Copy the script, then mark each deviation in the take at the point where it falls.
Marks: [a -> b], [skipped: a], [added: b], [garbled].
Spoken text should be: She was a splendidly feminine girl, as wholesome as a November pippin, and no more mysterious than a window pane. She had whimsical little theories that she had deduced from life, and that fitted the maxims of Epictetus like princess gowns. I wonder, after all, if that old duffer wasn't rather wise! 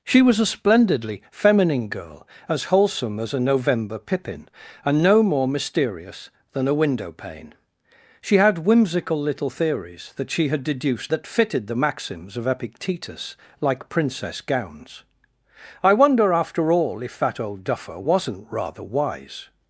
She was a splendidly feminine girl, as wholesome as a November pippin, and no more mysterious than a window pane. She had whimsical little theories that she had deduced [skipped: from life, and] that fitted the maxims of Epictetus like princess gowns. I wonder, after all, if that old duffer wasn't rather wise!